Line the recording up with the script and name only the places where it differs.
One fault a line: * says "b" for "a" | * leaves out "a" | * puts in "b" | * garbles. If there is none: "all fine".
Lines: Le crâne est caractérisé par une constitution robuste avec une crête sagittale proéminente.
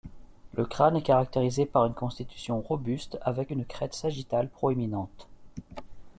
all fine